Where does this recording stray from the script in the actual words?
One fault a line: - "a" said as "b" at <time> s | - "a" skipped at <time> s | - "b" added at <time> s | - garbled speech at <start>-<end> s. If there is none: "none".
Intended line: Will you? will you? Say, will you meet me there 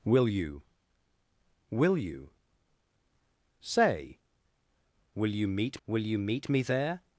- "will you meet" added at 5.9 s